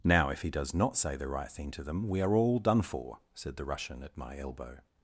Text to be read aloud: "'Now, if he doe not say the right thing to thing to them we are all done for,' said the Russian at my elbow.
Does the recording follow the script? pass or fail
fail